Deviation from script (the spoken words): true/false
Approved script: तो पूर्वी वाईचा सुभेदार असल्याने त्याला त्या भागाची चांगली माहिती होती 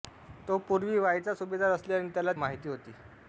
true